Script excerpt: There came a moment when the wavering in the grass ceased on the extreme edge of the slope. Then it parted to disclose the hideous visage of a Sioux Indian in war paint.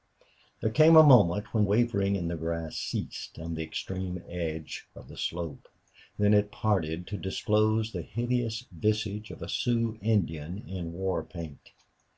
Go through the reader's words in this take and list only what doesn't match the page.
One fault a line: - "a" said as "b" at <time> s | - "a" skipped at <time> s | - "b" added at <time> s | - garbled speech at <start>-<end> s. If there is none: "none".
- "the" skipped at 1.6 s